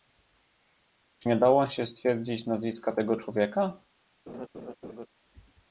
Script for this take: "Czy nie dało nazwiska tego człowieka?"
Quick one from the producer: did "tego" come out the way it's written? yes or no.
yes